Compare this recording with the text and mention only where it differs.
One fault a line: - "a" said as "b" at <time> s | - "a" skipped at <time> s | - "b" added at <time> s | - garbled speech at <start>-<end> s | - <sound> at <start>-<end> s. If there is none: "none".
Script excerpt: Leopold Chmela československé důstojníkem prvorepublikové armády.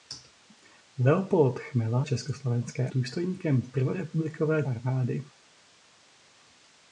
none